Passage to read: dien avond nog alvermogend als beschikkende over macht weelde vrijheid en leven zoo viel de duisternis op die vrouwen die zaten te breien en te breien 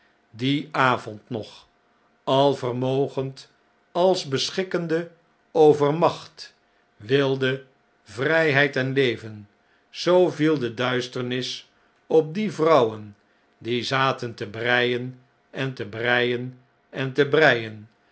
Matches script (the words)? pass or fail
fail